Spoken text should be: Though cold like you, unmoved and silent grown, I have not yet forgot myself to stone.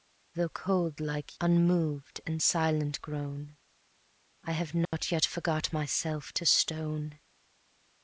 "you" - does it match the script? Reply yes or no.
no